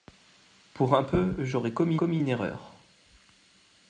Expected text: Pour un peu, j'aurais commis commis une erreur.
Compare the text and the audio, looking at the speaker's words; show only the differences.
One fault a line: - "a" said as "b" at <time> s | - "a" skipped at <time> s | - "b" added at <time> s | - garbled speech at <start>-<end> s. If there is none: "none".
none